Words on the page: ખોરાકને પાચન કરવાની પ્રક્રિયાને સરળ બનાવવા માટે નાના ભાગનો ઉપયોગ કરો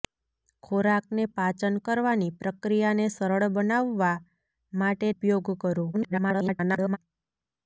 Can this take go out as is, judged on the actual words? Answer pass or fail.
fail